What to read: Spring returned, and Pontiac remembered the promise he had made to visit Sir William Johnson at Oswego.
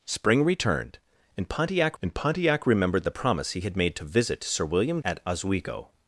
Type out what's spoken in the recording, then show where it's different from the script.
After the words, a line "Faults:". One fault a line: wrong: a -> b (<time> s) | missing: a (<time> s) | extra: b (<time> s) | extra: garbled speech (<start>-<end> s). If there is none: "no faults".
Spring returned, and Pontiac and Pontiac remembered the promise he had made to visit Sir William At Oswego.
Faults:
extra: and Pontiac (2.0 s)
missing: Johnson (5.0 s)